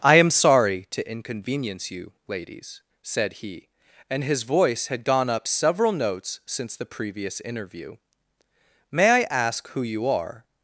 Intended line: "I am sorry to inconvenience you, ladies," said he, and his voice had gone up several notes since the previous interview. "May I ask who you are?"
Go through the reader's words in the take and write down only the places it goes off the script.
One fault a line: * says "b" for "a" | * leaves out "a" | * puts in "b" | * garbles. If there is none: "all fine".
all fine